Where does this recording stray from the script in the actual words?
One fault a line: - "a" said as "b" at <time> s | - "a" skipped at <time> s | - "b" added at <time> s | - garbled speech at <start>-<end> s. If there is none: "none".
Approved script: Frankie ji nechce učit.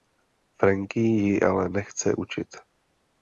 - "ale" added at 1.4 s